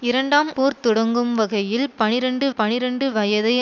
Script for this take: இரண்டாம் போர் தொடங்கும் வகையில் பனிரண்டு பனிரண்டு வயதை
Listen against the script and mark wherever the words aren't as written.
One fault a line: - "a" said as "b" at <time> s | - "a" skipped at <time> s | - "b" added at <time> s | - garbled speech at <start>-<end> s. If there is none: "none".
none